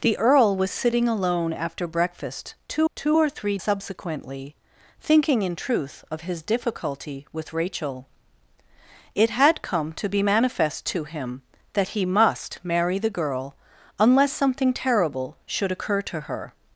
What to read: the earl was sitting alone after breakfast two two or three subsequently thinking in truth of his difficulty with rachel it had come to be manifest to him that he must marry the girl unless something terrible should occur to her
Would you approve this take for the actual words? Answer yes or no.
yes